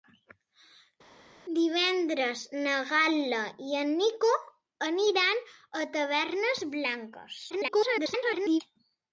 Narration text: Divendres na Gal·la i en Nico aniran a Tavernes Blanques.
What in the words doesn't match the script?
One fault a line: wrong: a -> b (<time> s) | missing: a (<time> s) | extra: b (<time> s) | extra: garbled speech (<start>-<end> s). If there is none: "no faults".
extra: garbled speech (7.5-8.6 s)